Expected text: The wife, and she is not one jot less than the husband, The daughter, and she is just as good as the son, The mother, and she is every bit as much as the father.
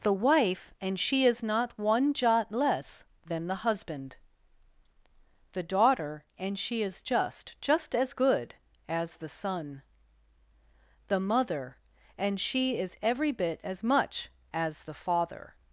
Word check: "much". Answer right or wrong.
right